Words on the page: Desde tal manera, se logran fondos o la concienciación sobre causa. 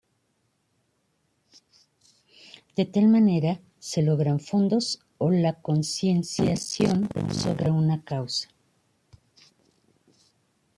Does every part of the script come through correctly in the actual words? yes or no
no